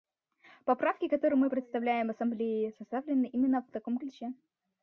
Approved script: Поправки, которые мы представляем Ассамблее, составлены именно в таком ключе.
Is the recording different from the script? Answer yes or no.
no